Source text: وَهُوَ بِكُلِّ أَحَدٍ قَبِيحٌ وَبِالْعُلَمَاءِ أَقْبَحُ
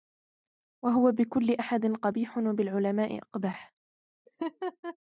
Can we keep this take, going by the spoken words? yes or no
yes